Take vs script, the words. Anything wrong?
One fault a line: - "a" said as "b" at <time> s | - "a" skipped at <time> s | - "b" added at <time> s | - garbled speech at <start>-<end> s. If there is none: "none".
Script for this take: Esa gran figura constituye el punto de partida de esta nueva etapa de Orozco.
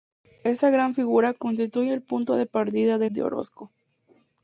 - "esta nueva etapa" skipped at 3.0 s